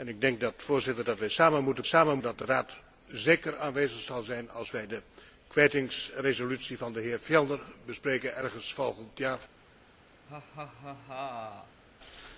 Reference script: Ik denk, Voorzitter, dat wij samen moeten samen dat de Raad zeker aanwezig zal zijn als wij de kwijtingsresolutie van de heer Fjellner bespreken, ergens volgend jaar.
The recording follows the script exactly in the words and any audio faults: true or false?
false